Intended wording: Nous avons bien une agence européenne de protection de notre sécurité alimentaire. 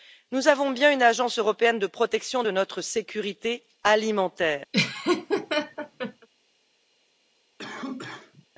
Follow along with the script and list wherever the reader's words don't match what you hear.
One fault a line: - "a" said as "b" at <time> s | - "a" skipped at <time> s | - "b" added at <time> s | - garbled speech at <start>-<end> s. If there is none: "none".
none